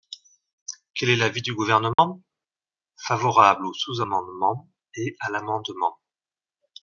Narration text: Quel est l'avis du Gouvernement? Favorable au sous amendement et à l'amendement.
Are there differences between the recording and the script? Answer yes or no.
no